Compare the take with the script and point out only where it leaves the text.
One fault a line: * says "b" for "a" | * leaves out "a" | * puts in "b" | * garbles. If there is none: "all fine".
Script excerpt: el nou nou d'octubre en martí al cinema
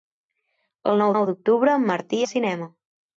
all fine